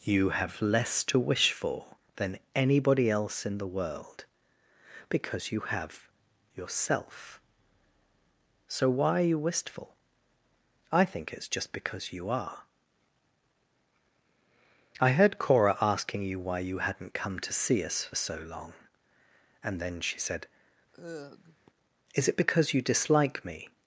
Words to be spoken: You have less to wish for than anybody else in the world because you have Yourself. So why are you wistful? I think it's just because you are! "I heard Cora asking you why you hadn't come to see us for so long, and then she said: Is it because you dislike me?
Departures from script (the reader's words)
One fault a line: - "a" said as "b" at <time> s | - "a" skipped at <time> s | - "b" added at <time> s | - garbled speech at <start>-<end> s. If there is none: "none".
none